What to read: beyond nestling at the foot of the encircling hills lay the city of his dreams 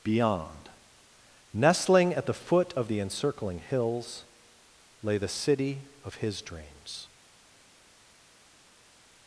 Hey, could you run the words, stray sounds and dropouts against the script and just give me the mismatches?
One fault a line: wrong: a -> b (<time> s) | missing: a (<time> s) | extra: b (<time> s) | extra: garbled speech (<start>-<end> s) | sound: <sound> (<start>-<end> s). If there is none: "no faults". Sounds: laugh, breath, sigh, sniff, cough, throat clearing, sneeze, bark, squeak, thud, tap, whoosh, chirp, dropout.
no faults